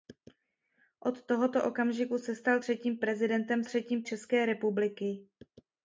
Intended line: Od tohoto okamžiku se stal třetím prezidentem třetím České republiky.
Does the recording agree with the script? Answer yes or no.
yes